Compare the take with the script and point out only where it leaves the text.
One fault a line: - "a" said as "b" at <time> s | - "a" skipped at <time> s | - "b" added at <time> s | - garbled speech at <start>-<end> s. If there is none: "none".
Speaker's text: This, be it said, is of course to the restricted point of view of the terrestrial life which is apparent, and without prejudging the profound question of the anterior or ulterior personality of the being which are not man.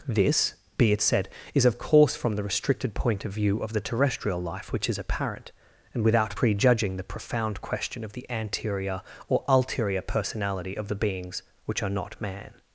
- "to" said as "from" at 2.1 s
- "being" said as "beings" at 10.9 s